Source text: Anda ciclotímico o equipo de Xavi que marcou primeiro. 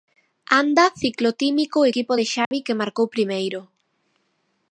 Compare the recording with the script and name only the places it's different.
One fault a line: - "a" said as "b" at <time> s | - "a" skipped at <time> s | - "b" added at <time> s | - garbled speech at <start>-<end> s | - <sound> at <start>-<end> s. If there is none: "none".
- dropout at 2.4-2.5 s